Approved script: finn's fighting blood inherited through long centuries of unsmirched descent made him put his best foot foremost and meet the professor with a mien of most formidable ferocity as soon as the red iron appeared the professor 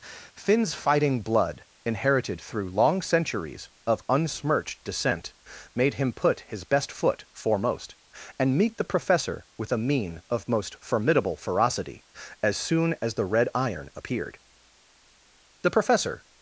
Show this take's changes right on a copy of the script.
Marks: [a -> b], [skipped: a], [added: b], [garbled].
finn's fighting blood inherited through long centuries of unsmirched descent made him put his best foot foremost and meet the professor with a mien of most formidable ferocity as soon as the red iron appeared the professor